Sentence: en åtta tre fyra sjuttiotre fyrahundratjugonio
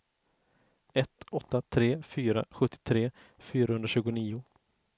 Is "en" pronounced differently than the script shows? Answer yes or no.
yes